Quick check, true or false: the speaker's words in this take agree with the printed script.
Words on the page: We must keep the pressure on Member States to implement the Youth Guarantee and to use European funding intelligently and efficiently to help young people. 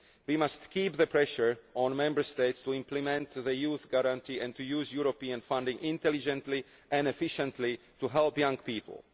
true